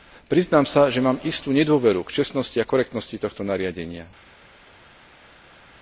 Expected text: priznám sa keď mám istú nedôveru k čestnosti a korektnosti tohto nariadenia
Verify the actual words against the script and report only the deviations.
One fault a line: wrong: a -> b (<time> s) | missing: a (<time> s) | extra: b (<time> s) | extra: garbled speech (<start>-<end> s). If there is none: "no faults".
wrong: keď -> že (0.9 s)